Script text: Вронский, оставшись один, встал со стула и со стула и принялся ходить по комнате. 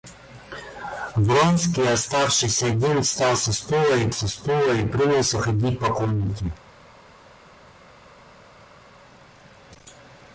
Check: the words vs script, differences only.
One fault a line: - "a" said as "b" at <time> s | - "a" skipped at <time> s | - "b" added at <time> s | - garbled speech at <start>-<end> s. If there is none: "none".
none